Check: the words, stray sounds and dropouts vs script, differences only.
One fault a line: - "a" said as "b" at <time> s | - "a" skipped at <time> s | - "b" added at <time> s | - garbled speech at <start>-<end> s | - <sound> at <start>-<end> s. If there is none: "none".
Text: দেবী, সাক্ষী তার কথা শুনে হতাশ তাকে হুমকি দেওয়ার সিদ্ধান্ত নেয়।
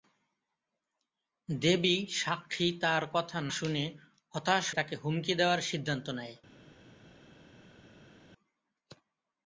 none